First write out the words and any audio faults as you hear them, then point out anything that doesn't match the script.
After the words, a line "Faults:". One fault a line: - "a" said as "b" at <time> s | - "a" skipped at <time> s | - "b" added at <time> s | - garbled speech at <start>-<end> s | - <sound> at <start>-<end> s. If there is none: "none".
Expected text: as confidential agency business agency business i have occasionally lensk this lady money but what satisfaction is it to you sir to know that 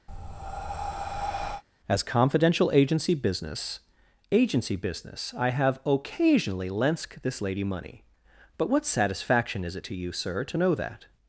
as confidential agency business agency business i have occasionally lensk this lady money but what satisfaction is it to you sir to know that
Faults:
- breath at 0.1-1.6 s